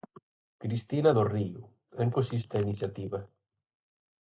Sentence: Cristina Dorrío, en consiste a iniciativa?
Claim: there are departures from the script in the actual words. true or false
false